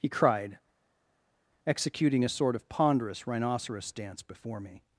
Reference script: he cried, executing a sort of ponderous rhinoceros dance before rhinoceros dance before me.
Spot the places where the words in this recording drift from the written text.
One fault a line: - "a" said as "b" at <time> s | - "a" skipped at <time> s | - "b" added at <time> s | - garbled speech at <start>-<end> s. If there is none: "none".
- "rhinoceros dance before" skipped at 4.6 s